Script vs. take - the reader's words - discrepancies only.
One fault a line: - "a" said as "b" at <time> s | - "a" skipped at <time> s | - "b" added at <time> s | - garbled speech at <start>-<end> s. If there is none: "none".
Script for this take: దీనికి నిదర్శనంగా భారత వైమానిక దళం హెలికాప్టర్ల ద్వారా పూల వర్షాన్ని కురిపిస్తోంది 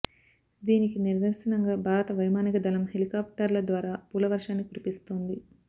none